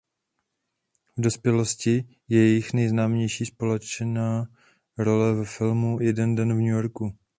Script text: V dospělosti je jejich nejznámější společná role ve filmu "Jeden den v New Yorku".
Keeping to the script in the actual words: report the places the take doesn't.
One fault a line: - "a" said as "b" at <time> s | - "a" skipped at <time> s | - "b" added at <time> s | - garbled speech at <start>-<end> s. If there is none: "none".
none